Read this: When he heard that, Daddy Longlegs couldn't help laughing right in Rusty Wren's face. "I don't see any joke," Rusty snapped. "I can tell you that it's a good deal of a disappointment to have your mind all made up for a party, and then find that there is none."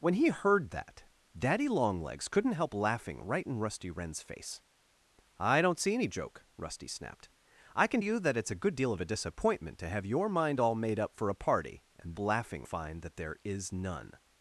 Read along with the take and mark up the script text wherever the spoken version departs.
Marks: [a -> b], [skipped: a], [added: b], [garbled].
When he heard that, Daddy Longlegs couldn't help laughing right in Rusty Wren's face. "I don't see any joke," Rusty snapped. "I can [skipped: tell] you that it's a good deal of a disappointment to have your mind all made up for a party, and [then -> laughing] find that there is none."